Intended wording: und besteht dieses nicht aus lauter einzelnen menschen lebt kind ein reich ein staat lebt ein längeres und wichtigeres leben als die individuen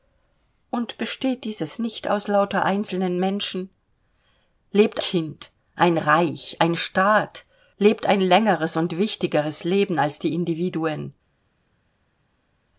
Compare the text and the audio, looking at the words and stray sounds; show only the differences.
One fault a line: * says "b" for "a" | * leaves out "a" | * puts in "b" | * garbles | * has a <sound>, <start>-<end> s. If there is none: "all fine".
all fine